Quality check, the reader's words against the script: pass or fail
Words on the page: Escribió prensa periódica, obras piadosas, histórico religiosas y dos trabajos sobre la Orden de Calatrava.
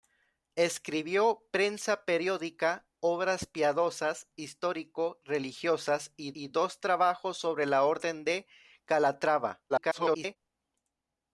fail